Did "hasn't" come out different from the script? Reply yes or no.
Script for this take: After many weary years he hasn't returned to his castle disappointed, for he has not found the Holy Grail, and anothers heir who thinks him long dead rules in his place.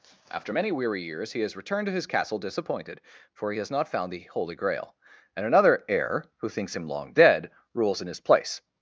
yes